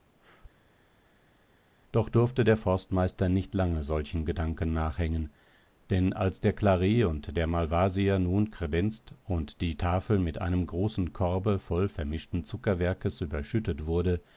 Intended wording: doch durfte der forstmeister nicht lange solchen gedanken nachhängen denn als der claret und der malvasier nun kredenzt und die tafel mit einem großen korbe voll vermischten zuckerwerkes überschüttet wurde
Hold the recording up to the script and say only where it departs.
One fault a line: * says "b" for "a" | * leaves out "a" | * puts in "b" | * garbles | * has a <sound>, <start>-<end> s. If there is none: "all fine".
all fine